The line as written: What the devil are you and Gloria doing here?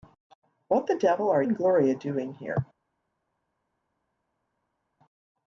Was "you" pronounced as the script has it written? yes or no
no